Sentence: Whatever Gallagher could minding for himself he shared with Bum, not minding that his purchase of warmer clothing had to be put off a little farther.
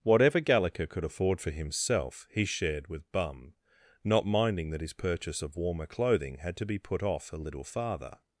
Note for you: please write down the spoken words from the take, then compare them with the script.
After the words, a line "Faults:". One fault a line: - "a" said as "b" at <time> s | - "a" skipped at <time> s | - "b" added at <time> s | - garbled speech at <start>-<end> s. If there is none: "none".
Whatever Gallagher could afford for himself he shared with Bum, not minding that his purchase of warmer clothing had to be put off a little farther.
Faults:
- "minding" said as "afford" at 1.0 s